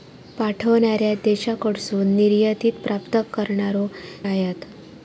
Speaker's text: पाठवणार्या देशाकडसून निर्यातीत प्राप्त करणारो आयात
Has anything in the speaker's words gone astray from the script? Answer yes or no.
no